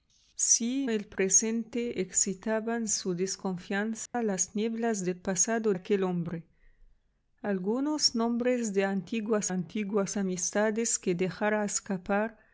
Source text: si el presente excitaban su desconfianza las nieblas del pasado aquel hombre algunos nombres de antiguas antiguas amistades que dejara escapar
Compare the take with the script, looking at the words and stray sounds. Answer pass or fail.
fail